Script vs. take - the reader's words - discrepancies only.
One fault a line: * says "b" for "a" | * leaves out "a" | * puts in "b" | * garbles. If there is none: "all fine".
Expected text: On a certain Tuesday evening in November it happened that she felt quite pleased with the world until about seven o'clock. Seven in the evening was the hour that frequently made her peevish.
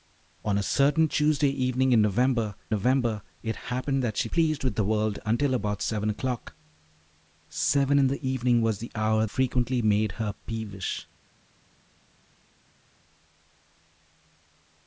* puts in "November"
* leaves out "felt quite"
* leaves out "that"